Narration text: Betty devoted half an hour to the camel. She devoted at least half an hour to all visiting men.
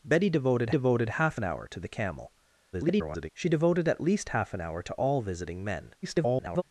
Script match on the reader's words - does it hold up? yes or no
no